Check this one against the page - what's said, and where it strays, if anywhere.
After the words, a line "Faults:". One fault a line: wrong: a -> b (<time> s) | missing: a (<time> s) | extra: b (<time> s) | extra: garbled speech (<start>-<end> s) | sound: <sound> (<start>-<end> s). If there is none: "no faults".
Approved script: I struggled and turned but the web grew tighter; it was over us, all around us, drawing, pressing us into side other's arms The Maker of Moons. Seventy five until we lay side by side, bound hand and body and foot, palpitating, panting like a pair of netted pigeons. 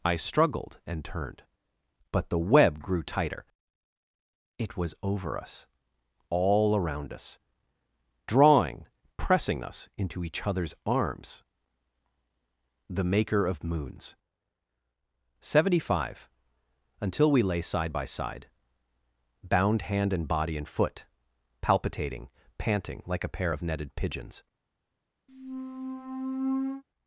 I struggled and turned but the web grew tighter; it was over us, all around us, drawing, pressing us into each other's arms The Maker of Moons. Seventy five until we lay side by side, bound hand and body and foot, palpitating, panting like a pair of netted pigeons.
Faults:
wrong: side -> each (10.2 s)
sound: squeak (25.3-26.8 s)